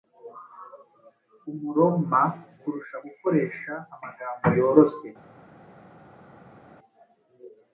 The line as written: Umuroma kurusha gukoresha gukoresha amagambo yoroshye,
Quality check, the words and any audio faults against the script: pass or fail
fail